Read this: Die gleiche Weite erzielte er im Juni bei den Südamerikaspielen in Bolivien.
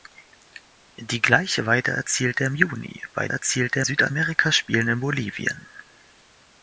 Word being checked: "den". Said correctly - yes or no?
no